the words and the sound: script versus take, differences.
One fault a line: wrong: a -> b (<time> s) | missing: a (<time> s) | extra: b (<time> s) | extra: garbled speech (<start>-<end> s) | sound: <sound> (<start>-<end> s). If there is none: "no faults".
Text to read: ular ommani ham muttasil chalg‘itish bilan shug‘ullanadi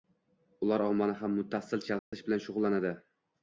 sound: dropout (2.0-2.1 s)